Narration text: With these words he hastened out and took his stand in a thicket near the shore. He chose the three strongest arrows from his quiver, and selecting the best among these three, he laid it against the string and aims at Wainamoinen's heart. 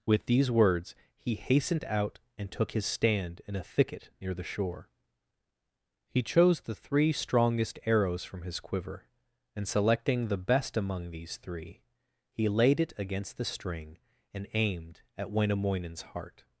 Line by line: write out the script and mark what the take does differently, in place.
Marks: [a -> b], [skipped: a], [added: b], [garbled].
With these words he hastened out and took his stand in a thicket near the shore. He chose the three strongest arrows from his quiver, and selecting the best among these three, he laid it against the string and [aims -> aimed] at Wainamoinen's heart.